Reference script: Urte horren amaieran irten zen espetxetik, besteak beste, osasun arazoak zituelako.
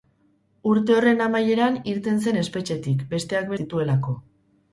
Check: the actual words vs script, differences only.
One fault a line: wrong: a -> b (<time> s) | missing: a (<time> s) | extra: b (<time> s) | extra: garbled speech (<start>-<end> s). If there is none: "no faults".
missing: beste osasun arazoak (3.5 s)